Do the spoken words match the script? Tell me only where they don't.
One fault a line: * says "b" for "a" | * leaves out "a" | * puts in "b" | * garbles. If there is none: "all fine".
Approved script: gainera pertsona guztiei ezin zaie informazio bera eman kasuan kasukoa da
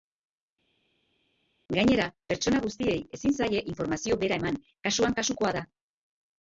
all fine